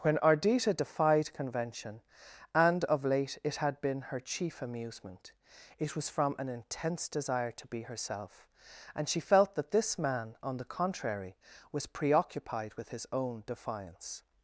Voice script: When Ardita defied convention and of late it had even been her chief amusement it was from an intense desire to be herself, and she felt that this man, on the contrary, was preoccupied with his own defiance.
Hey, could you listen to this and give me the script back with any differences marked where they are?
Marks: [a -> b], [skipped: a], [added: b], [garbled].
When Ardita defied convention and of late it had [skipped: even] been her chief amusement it was from an intense desire to be herself, and she felt that this man, on the contrary, was preoccupied with his own defiance.